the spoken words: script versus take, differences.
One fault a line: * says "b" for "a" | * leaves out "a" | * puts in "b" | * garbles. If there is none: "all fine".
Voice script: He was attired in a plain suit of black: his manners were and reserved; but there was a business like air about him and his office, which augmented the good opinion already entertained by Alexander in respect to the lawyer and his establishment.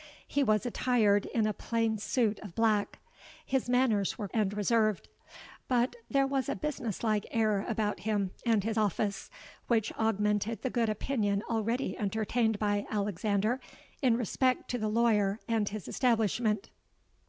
all fine